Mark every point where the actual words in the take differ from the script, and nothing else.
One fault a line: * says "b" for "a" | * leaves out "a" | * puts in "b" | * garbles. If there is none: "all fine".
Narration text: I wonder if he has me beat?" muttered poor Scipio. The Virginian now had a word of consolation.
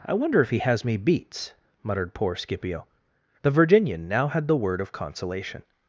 * says "beats" for "beat"
* says "the" for "a"